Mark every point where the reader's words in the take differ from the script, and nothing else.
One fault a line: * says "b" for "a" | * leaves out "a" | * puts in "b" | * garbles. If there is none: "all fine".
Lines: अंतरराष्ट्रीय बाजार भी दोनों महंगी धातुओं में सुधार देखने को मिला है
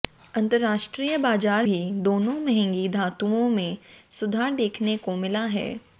all fine